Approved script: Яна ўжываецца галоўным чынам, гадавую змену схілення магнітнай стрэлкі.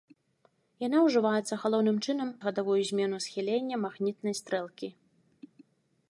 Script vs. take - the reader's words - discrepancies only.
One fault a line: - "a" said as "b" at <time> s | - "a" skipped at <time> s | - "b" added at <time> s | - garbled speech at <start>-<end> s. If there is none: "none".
none